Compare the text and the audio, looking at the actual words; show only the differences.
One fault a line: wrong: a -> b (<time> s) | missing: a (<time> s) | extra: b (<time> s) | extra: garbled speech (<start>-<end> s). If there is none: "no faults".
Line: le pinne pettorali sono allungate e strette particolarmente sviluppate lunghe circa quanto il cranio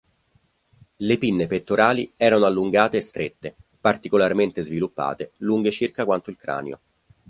wrong: sono -> erano (2.2 s)